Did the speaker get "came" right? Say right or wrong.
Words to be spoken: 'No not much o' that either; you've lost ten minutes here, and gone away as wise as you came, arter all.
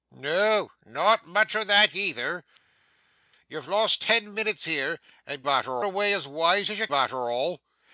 wrong